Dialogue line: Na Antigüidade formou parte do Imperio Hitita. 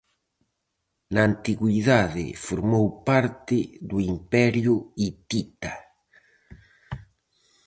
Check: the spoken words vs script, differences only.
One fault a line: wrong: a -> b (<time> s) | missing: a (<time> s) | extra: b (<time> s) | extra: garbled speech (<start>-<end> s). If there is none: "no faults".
no faults